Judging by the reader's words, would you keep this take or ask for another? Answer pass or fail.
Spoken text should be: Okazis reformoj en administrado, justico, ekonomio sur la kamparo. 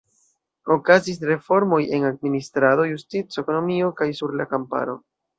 fail